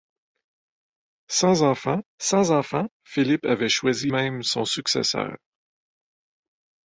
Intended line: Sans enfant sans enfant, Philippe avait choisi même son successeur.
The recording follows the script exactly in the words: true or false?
true